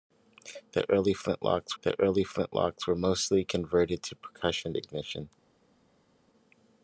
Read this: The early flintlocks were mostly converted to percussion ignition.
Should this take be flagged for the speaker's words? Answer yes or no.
yes